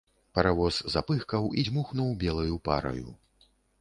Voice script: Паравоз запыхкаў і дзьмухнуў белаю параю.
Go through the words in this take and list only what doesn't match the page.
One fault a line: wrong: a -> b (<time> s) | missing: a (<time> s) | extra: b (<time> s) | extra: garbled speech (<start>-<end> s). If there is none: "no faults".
no faults